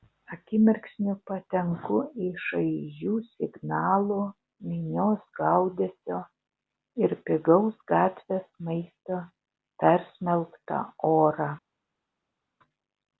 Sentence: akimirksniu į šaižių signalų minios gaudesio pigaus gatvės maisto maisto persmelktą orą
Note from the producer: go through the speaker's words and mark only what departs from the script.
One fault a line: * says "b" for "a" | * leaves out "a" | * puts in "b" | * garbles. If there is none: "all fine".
* puts in "patenku"
* puts in "ir"
* leaves out "maisto"